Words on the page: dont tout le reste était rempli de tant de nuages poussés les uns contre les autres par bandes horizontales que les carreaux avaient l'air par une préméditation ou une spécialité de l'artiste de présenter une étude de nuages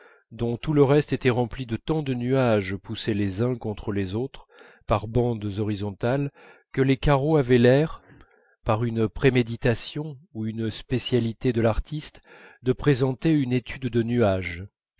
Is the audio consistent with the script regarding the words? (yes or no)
yes